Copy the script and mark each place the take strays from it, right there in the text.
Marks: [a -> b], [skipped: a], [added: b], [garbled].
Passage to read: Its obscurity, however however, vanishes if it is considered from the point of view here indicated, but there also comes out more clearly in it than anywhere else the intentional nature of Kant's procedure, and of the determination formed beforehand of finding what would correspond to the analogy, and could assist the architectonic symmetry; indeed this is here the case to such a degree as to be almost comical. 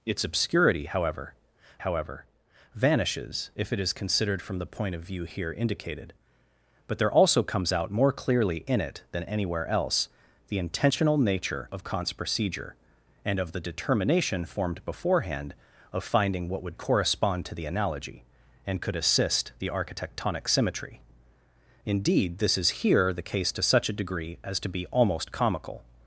Its obscurity, however however, vanishes if it is considered from the point of view here indicated, but there also comes out more clearly in it than anywhere else the intentional nature of Kant's procedure, and of the determination formed beforehand of finding what would correspond to the analogy, and could assist the architectonic symmetry; indeed this is here the case to such a degree as to be almost comical.